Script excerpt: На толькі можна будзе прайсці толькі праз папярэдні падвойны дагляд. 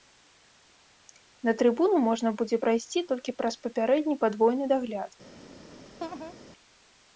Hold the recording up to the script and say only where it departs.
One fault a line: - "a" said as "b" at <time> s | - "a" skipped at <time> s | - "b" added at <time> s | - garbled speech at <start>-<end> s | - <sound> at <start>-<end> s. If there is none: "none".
- "толькі" said as "трыбуну" at 1.6 s
- laugh at 6.0-6.3 s